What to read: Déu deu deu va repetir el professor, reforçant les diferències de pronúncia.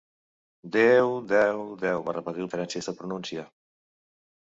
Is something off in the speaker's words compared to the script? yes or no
yes